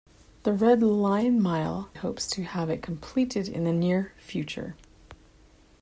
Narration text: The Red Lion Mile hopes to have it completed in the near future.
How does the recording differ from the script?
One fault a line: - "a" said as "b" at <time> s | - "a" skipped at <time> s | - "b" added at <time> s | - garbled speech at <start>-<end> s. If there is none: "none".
none